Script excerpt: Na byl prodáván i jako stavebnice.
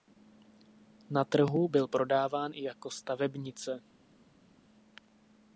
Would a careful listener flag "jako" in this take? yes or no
no